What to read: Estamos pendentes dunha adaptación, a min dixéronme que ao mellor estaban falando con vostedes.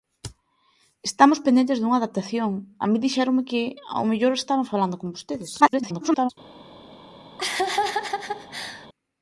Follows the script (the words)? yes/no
no